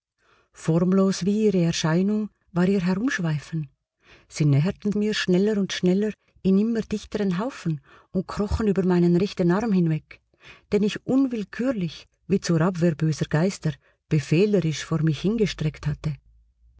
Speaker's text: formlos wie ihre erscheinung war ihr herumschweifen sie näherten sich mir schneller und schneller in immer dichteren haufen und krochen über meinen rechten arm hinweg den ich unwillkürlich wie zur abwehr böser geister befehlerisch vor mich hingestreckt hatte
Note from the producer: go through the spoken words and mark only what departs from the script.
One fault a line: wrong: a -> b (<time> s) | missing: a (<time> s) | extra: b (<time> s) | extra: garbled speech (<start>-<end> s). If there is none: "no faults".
missing: sich (4.9 s)